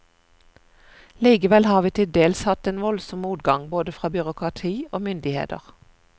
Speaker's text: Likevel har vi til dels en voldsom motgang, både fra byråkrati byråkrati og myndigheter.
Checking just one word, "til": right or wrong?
right